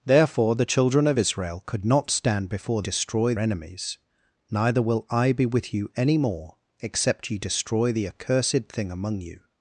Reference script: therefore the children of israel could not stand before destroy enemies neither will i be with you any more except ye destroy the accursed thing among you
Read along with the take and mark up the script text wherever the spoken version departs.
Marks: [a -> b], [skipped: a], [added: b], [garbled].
therefore the children of israel could not stand before destroy enemies neither will i be with you any more except ye destroy the accursed thing among you